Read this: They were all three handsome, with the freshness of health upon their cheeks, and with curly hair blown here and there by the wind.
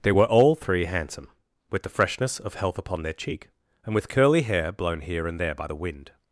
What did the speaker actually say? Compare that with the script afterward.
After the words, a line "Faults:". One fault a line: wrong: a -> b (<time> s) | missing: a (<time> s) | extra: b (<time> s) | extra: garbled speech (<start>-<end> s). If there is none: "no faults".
They were all three handsome, with the freshness of health upon their cheek, and with curly hair blown here and there by the wind.
Faults:
wrong: cheeks -> cheek (3.1 s)